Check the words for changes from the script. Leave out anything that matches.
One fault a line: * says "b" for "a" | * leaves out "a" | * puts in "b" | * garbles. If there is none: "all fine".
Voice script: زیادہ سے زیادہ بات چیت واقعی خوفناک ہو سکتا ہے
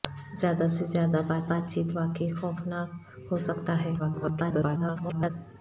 * puts in "بات"
* garbles